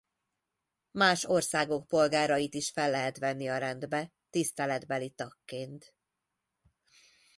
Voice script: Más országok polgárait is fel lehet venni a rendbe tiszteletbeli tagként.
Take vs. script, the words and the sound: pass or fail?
pass